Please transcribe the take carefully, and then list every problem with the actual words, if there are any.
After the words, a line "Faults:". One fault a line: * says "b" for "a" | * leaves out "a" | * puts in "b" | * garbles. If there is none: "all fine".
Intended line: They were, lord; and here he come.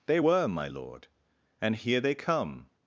They were, my lord; and here they come.
Faults:
* puts in "my"
* says "they" for "he"